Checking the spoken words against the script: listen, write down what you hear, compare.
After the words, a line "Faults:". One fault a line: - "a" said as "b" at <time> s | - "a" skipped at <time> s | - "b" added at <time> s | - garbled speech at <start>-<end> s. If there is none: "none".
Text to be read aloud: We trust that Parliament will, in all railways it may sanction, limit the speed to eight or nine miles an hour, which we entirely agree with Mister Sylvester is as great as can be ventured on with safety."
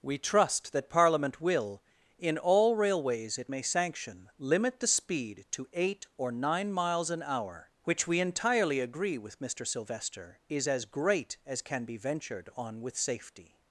We trust that Parliament will, in all railways it may sanction, limit the speed to eight or nine miles an hour, which we entirely agree with Mister Sylvester is as great as can be ventured on with safety."
Faults:
none